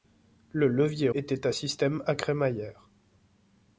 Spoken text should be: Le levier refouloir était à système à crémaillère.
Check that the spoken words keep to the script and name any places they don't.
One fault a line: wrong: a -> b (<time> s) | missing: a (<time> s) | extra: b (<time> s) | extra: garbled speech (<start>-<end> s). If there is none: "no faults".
missing: refouloir (1.1 s)